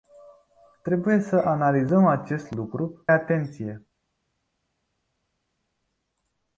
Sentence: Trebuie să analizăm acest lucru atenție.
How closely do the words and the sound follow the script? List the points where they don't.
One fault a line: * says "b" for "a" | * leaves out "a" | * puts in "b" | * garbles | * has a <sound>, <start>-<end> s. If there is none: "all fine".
all fine